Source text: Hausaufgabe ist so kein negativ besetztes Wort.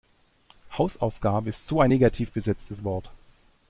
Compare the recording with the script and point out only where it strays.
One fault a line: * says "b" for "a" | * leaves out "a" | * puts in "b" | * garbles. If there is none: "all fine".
* says "ein" for "kein"